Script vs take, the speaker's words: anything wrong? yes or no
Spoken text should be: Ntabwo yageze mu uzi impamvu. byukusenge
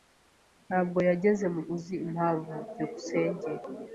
no